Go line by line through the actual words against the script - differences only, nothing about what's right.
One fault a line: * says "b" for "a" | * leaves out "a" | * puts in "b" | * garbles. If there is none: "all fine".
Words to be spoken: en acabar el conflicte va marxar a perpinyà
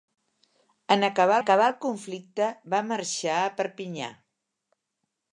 * puts in "acabar"